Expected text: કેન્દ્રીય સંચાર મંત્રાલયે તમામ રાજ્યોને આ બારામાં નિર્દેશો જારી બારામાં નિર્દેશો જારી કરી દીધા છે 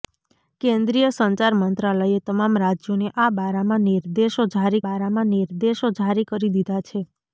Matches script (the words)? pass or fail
pass